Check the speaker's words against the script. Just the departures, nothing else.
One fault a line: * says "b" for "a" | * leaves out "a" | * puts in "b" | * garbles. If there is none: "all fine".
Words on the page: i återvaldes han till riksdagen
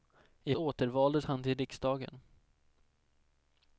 all fine